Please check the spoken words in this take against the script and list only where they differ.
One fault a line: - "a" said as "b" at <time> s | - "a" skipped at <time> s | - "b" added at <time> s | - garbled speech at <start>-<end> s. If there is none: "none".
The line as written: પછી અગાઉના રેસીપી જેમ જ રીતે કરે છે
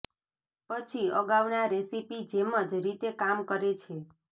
- "કામ" added at 3.2 s